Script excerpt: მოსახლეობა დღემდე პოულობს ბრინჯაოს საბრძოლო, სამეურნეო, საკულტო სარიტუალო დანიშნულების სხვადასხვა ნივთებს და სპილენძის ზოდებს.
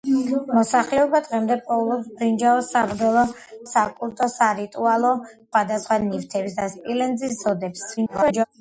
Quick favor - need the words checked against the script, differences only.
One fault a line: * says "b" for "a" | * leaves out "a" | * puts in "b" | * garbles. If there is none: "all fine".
* leaves out "სამეურნეო"
* leaves out "დანიშნულების"
* garbles